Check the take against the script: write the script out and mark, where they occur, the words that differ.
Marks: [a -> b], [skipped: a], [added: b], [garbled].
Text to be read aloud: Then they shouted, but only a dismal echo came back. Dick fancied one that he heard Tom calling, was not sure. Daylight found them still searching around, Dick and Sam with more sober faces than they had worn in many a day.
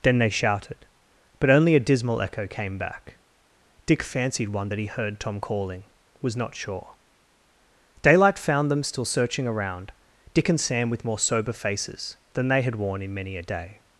Then they shouted, but only a dismal echo came back. Dick fancied one that he heard Tom calling, was not sure. Daylight found them still searching around, Dick and Sam with more sober faces than they had worn in many a day.